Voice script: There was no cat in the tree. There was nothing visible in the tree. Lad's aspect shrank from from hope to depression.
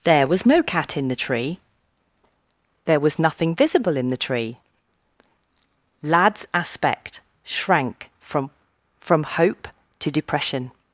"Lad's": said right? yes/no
yes